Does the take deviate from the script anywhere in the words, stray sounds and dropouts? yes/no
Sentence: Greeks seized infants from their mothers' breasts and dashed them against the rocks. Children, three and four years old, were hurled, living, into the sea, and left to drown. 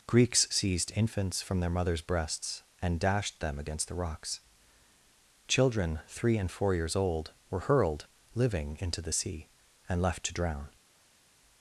no